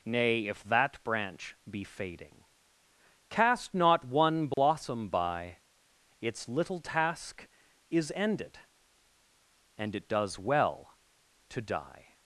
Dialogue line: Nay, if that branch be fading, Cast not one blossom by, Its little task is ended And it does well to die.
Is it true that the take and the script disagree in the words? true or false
false